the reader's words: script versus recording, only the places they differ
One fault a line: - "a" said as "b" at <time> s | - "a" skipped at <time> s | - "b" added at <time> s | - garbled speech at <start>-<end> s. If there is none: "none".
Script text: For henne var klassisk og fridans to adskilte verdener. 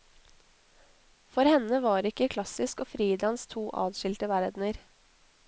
- "ikke" added at 2.1 s